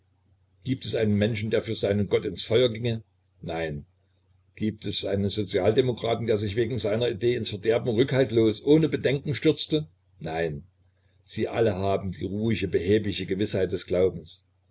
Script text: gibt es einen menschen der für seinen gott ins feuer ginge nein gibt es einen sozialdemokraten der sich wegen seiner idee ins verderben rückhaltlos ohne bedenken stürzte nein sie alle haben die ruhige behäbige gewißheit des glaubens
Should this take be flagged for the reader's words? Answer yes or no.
no